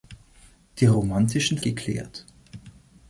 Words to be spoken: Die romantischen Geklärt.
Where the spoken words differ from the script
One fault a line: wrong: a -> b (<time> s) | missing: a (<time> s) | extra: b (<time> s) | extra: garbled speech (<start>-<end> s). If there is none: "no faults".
no faults